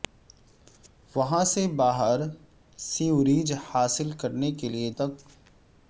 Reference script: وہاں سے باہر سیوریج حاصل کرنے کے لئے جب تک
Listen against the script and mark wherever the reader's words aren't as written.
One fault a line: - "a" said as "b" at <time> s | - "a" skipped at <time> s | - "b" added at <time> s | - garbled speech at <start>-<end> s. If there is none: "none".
- "جب" skipped at 4.9 s